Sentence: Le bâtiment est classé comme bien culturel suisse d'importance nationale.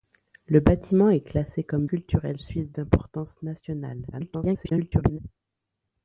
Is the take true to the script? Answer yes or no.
no